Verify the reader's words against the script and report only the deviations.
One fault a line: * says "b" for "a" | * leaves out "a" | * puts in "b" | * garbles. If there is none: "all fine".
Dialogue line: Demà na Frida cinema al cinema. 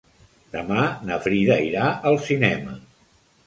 * says "irà" for "cinema"